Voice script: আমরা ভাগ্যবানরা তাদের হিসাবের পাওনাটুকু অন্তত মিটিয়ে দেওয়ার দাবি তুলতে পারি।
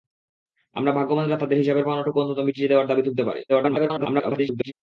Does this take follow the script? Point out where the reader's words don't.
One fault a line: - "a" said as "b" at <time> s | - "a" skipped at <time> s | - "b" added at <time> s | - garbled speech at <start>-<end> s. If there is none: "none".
- garbled speech at 3.5-4.7 s